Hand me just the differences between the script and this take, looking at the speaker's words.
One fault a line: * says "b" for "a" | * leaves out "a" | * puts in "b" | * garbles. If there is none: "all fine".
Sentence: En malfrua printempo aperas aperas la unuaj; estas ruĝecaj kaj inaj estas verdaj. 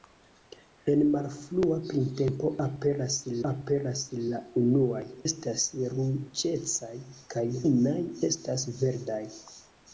all fine